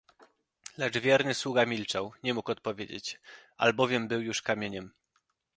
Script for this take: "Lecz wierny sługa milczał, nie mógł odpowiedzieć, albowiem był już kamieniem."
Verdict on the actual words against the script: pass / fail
pass